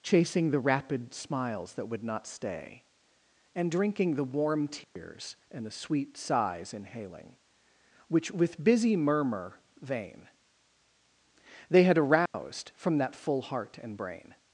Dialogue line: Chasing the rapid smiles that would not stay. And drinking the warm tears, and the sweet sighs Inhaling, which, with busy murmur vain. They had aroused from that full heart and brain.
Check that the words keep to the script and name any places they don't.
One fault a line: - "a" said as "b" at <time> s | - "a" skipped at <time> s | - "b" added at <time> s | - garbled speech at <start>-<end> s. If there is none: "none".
none